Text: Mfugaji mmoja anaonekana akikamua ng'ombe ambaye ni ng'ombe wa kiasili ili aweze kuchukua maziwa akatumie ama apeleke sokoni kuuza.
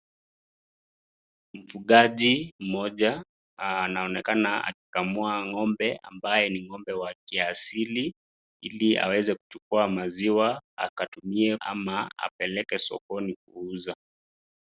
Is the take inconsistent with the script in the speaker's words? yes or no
no